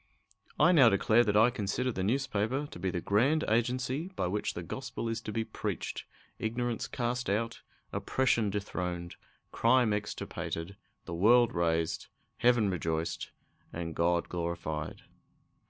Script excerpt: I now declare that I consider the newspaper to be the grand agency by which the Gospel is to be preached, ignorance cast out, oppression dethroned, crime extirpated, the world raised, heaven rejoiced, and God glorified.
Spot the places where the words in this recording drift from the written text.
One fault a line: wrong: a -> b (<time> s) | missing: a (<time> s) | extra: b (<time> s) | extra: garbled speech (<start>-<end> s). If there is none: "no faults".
no faults